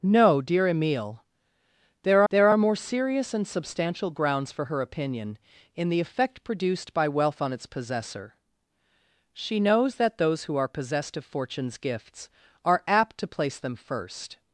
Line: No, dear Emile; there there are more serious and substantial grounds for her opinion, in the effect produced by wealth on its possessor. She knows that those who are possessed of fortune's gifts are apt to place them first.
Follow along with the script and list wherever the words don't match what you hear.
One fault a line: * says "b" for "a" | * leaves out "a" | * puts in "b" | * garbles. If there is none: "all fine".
all fine